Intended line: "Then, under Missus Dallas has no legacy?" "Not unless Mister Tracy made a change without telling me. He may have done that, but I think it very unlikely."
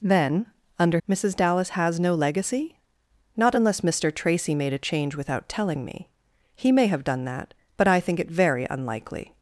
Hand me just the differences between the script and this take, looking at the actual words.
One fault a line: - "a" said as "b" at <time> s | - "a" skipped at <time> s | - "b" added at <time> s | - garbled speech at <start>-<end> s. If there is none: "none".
none